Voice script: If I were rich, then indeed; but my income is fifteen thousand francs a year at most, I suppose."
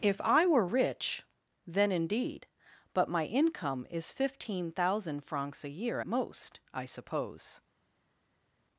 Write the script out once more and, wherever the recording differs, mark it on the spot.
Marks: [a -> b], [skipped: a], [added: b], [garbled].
If I were rich, then indeed; but my income is fifteen thousand francs a year [skipped: at] most, I suppose."